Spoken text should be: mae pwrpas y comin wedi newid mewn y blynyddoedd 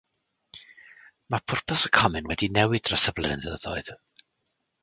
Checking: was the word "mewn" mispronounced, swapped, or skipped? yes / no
yes